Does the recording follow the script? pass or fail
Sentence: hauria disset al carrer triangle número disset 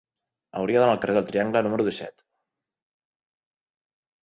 fail